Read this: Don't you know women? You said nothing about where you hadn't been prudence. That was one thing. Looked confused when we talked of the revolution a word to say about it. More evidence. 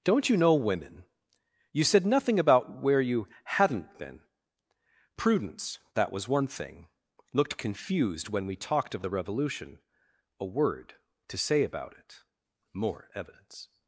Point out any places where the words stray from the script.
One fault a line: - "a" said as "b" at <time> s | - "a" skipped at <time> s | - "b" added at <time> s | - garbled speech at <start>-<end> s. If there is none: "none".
none